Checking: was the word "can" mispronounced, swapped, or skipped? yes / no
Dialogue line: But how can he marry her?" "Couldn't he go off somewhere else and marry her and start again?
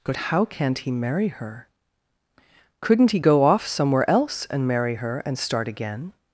yes